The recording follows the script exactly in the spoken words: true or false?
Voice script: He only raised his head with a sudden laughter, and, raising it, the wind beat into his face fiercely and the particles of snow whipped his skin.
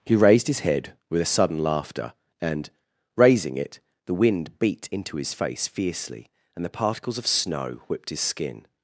false